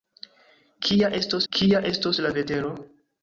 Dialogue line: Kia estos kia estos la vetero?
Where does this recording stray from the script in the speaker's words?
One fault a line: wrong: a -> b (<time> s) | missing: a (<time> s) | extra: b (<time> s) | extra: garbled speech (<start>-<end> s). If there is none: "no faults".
no faults